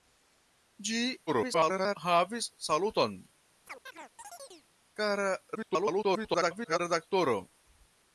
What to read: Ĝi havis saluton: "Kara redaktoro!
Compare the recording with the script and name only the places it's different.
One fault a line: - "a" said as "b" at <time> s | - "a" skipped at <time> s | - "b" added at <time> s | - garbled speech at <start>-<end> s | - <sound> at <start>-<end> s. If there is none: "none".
- garbled speech at 1.3-2.0 s
- chirp at 3.6-4.7 s
- garbled speech at 5.6-6.8 s